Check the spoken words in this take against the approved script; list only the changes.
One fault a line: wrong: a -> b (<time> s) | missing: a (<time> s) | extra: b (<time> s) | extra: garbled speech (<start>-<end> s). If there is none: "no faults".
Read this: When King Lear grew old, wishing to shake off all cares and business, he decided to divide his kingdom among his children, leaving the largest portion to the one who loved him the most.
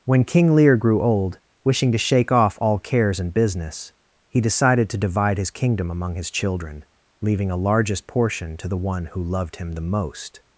wrong: the -> a (7.5 s)